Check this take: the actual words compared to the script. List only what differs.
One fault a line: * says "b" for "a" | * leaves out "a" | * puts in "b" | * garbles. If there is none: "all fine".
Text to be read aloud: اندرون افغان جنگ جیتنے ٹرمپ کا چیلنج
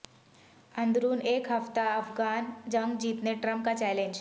* puts in "ایک ہفتہ"